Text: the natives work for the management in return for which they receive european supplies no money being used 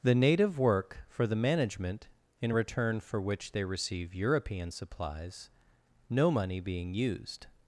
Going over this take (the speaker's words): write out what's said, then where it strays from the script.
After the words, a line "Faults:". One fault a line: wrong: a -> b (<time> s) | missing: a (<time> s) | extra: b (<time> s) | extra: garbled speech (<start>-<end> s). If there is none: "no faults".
the native work for the management in return for which they receive european supplies no money being used
Faults:
wrong: natives -> native (0.1 s)